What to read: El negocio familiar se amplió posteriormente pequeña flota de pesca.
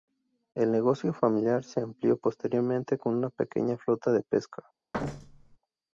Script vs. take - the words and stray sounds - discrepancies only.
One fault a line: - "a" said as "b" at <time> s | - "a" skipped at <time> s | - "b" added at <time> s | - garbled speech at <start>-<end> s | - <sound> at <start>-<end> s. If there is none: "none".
- "con una" added at 3.0 s
- thud at 4.9-5.6 s